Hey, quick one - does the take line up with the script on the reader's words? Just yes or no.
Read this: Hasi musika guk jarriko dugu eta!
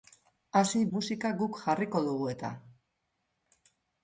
yes